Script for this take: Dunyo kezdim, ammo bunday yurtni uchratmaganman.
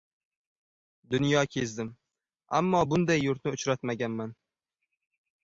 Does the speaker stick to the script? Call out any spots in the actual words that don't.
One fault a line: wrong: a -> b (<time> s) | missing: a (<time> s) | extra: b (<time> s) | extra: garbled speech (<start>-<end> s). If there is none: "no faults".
no faults